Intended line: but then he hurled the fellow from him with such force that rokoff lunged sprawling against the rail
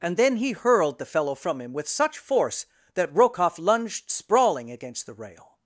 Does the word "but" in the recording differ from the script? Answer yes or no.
yes